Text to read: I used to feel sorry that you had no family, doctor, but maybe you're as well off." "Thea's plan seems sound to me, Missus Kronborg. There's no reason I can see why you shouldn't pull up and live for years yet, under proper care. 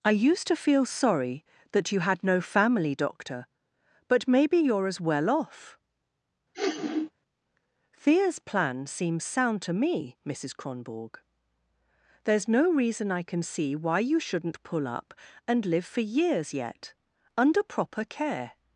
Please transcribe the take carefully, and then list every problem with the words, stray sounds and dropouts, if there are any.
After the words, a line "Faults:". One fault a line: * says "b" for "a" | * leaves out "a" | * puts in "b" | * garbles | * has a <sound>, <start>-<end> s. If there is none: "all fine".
I used to feel sorry that you had no family, doctor, but maybe you're as well off." "Thea's plan seems sound to me, Missus Kronborg. There's no reason I can see why you shouldn't pull up and live for years yet, under proper care.
Faults:
* has a sniff, 6.5-7.1 s